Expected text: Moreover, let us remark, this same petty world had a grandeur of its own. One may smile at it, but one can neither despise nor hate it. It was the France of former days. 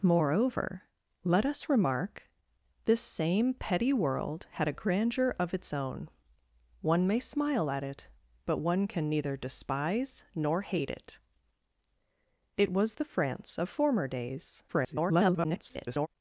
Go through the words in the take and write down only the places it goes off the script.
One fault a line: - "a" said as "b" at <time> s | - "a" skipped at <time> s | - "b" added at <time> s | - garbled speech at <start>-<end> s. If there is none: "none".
- garbled speech at 14.7-16.1 s